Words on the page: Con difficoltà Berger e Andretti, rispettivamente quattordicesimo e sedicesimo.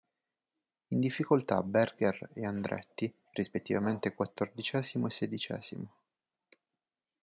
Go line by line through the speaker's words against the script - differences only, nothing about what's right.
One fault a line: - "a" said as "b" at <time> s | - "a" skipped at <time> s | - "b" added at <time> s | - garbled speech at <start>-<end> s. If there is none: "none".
- "Con" said as "In" at 0.9 s